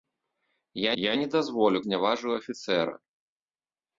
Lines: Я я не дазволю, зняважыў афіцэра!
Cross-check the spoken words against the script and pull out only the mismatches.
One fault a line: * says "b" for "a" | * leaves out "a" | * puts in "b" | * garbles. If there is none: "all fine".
all fine